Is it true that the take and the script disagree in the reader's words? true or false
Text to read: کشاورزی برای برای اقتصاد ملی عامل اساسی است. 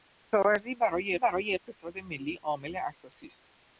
false